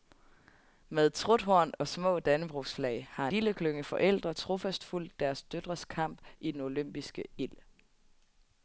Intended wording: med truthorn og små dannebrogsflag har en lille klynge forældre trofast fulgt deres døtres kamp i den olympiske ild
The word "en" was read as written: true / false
false